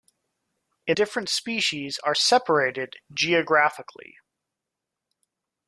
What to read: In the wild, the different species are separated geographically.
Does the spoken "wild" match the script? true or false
false